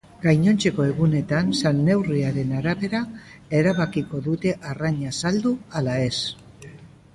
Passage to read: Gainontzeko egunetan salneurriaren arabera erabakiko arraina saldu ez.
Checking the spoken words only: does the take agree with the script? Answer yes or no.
no